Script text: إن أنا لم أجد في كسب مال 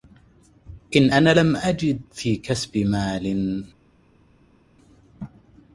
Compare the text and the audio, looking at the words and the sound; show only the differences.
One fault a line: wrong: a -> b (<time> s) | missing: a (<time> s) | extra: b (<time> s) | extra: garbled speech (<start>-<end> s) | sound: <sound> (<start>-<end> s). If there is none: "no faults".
no faults